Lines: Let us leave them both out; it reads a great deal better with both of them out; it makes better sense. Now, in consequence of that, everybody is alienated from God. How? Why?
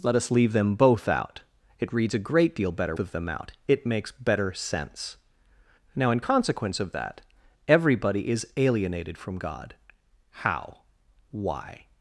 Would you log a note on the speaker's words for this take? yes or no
yes